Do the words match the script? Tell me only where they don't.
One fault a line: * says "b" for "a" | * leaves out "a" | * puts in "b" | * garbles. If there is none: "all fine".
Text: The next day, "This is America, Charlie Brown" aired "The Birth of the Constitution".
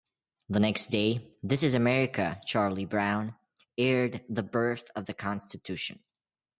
all fine